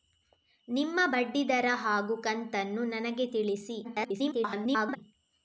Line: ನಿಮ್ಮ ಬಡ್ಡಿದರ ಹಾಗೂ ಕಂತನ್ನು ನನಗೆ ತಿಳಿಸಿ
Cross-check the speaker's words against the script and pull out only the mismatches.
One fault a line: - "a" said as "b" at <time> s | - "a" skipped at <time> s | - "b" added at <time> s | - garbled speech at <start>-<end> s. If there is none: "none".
- garbled speech at 3.8-5.0 s